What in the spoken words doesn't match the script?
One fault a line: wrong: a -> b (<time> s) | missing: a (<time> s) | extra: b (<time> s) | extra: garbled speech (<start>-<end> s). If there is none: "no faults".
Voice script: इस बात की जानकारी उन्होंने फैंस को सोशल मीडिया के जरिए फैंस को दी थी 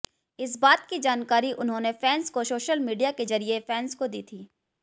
no faults